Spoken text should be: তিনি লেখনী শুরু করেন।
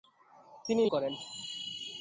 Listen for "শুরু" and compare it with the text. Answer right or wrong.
wrong